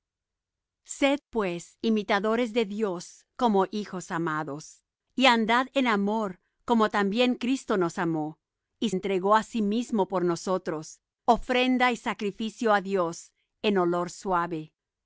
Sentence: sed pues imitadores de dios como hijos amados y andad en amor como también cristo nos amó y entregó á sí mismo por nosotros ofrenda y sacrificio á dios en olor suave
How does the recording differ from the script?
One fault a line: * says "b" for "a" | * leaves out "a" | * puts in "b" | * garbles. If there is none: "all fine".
all fine